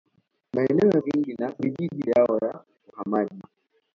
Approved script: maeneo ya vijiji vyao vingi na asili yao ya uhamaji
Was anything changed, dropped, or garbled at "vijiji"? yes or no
yes